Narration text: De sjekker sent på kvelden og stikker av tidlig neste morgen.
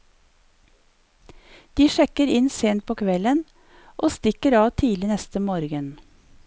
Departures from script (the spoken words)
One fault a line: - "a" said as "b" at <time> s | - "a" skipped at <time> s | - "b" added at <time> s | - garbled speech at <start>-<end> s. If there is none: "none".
- "inn" added at 2.4 s